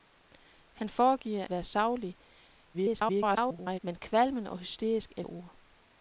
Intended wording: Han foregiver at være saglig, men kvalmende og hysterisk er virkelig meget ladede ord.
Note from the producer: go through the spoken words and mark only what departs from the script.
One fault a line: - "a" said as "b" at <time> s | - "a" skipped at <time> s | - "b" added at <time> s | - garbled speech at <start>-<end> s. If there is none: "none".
- "at" skipped at 1.5 s
- garbled speech at 2.7-3.8 s
- "virkelig meget ladede" skipped at 5.2 s